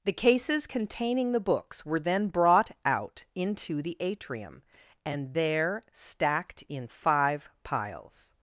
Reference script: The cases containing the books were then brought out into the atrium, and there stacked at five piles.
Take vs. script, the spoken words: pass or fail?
fail